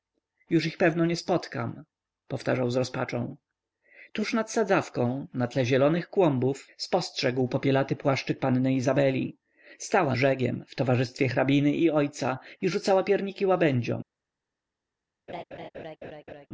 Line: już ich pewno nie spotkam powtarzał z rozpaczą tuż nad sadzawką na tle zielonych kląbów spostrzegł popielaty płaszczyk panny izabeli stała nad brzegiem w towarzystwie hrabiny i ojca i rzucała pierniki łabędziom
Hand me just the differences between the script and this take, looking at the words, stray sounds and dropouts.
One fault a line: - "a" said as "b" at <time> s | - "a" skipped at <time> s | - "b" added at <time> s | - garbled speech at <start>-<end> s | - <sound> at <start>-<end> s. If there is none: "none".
- "nad" skipped at 10.2 s
- laugh at 15.3-16.5 s